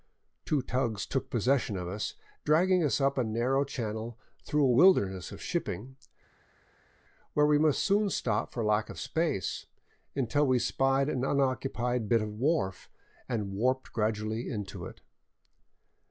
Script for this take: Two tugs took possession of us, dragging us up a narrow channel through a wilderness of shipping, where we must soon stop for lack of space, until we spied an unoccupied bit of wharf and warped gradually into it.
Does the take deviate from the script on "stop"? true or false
false